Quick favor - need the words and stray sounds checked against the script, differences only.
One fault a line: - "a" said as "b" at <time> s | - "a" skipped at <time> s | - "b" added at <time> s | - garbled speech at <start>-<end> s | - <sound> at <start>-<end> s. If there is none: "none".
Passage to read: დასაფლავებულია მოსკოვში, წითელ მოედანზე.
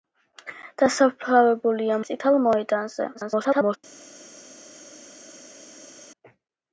- "მოსკოვში" skipped at 2.0 s
- garbled speech at 3.1-3.8 s